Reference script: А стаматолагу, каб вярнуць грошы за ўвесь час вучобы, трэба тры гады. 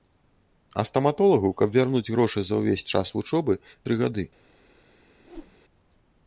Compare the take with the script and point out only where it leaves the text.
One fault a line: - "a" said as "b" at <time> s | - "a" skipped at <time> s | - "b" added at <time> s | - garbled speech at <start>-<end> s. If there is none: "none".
- "трэба" skipped at 3.5 s